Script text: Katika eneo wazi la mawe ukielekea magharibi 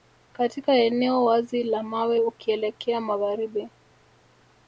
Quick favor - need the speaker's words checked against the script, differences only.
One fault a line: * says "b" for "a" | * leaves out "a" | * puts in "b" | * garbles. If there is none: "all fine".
all fine